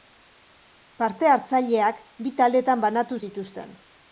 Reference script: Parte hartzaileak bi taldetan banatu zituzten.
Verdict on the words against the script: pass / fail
pass